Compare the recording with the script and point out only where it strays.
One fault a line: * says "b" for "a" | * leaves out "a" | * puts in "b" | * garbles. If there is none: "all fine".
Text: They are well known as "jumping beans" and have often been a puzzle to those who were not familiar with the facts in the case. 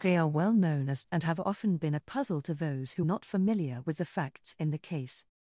* leaves out "jumping beans"
* leaves out "were"